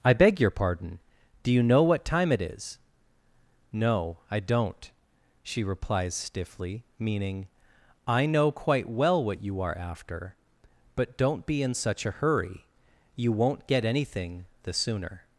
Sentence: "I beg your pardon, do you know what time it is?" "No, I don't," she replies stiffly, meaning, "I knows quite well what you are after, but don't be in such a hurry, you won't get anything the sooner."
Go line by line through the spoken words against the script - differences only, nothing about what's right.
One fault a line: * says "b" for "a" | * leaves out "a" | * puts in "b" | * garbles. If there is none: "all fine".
* says "know" for "knows"